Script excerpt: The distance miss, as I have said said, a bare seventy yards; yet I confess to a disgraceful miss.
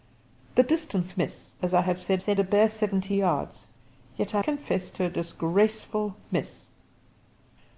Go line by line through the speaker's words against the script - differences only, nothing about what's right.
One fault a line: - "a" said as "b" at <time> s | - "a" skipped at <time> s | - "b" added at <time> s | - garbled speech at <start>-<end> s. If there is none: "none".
none